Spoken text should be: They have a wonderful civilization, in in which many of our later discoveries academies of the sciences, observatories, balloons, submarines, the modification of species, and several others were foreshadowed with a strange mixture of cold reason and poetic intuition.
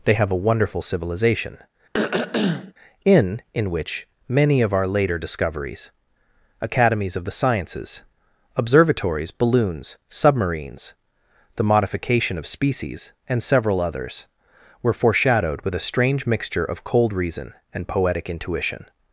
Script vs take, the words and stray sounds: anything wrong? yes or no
yes